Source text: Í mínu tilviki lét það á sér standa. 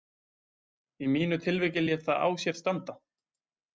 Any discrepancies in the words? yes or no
no